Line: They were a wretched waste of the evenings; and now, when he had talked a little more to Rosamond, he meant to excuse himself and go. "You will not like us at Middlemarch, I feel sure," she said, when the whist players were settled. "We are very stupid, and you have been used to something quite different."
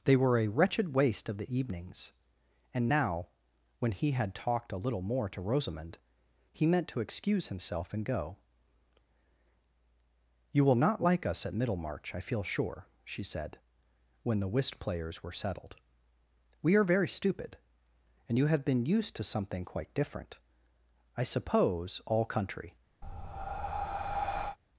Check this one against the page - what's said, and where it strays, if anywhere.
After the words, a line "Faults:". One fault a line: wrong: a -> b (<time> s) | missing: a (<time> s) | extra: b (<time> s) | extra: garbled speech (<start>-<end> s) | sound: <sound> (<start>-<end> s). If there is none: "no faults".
They were a wretched waste of the evenings; and now, when he had talked a little more to Rosamond, he meant to excuse himself and go. "You will not like us at Middlemarch, I feel sure," she said, when the whist players were settled. "We are very stupid, and you have been used to something quite different." "I suppose all country
Faults:
extra: I suppose all country (21.2 s)
sound: breath (23.0-24.6 s)